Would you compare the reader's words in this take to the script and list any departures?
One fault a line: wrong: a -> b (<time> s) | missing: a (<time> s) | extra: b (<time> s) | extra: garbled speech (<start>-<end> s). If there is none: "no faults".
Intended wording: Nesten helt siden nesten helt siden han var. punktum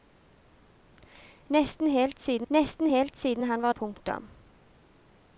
no faults